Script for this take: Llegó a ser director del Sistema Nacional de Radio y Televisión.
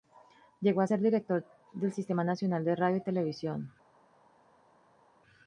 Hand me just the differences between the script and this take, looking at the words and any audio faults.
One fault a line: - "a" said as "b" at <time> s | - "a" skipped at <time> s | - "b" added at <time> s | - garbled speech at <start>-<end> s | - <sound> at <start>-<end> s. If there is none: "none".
none